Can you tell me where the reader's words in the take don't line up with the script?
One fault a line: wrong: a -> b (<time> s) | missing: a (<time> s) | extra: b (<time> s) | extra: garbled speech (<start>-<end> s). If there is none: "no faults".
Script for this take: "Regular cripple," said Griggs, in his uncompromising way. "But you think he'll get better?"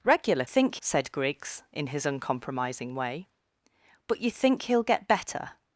wrong: cripple -> think (0.4 s)